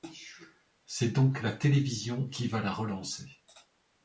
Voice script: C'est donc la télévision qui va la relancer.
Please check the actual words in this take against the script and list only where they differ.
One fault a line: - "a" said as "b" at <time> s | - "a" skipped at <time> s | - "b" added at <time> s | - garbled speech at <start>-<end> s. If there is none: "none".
none